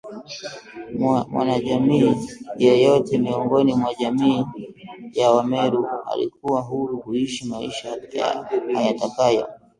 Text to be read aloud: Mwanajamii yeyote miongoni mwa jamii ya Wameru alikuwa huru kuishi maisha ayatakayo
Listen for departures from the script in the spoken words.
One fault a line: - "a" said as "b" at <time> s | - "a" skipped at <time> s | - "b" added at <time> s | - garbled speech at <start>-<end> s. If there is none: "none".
none